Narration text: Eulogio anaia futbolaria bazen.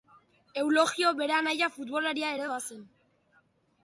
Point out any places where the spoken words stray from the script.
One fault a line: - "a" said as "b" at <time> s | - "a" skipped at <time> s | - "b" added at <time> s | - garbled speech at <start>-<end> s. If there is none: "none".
- "bere" added at 1.2 s
- "ere" added at 2.4 s